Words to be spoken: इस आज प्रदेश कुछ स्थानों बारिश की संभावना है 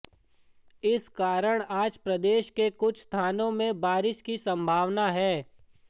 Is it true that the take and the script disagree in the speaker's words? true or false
true